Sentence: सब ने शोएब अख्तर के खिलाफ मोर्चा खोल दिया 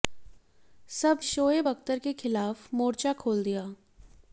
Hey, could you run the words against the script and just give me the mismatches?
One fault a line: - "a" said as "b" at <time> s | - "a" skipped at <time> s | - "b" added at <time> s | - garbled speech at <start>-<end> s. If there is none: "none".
- "ने" skipped at 1.2 s